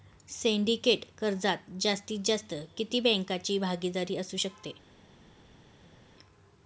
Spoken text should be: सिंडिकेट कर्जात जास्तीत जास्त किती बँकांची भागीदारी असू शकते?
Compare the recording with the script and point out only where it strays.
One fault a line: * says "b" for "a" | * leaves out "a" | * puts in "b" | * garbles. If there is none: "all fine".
all fine